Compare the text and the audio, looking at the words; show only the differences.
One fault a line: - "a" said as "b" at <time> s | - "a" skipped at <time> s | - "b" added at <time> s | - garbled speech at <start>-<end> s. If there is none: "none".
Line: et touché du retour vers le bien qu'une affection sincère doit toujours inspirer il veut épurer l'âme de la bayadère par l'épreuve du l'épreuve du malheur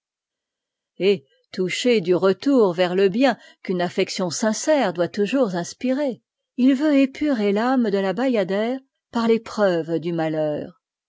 - "l'épreuve du" skipped at 10.1 s